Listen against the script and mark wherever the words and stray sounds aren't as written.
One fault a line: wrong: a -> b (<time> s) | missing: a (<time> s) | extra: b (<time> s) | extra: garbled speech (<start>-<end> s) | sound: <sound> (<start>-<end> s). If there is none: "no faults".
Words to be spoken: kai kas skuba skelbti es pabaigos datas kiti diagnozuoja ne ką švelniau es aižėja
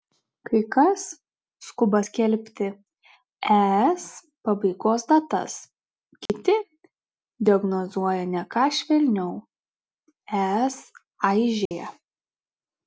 sound: dropout (6.3-6.3 s)
sound: dropout (11.7-11.7 s)